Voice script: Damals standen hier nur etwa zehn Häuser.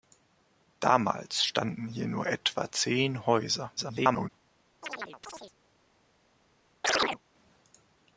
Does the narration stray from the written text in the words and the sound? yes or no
yes